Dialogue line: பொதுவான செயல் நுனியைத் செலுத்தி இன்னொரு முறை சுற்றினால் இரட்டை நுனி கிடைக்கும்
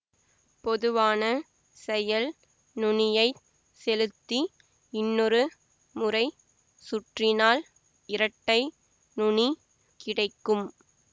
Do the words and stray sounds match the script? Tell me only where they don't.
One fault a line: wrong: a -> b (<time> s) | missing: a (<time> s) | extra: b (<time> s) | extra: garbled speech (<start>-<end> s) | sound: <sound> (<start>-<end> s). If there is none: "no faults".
no faults